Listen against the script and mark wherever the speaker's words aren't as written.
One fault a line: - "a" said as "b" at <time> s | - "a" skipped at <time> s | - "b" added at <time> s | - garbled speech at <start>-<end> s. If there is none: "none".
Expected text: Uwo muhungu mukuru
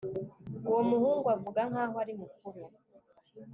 - "avuga nkaho ari" added at 1.4 s